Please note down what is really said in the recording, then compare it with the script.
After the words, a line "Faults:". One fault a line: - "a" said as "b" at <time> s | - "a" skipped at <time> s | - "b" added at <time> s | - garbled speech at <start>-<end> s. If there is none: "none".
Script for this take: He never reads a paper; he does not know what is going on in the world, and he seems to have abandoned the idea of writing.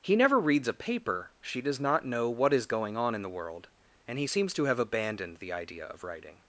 He never reads a paper; she does not know what is going on in the world, and he seems to have abandoned the idea of writing.
Faults:
- "he" said as "she" at 1.4 s